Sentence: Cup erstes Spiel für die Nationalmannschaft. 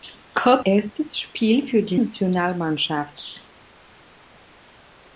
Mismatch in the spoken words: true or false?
false